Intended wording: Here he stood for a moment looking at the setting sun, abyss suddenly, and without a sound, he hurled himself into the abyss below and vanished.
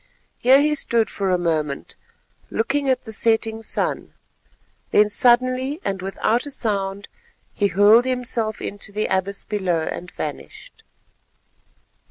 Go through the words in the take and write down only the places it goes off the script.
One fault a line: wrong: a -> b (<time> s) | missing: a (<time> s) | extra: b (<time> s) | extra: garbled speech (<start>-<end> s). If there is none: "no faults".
wrong: abyss -> then (4.9 s)